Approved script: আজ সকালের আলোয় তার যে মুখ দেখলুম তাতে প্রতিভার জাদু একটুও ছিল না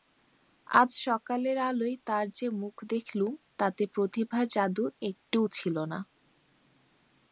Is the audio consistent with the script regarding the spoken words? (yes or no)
yes